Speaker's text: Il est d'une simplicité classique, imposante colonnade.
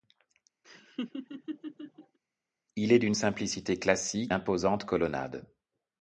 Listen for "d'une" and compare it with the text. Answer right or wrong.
right